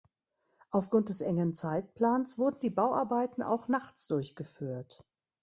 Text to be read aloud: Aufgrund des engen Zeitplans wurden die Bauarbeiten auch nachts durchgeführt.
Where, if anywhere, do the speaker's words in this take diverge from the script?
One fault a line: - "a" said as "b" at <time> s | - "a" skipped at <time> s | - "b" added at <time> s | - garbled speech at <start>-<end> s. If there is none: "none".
none